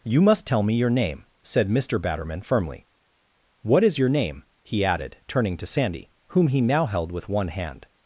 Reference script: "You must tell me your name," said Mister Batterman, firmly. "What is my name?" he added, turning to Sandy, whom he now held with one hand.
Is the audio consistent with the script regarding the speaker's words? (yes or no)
no